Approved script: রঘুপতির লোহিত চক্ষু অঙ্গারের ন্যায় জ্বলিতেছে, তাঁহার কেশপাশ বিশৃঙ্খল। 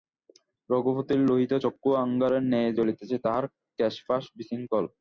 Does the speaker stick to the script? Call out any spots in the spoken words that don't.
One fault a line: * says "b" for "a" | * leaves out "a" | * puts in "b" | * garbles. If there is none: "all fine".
all fine